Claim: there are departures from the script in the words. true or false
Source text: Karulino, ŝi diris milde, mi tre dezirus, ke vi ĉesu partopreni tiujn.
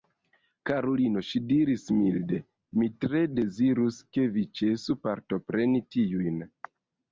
false